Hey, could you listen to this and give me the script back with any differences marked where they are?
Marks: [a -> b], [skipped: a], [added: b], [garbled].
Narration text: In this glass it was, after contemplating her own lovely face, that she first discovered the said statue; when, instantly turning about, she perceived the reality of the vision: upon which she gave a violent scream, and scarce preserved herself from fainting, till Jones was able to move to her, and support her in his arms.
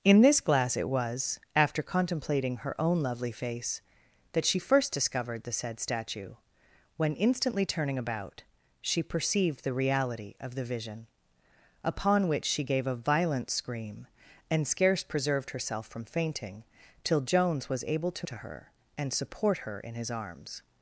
In this glass it was, after contemplating her own lovely face, that she first discovered the said statue; when, instantly turning about, she perceived the reality of the vision: upon which she gave a violent scream, and scarce preserved herself from fainting, till Jones was able to [skipped: move] to her, and support her in his arms.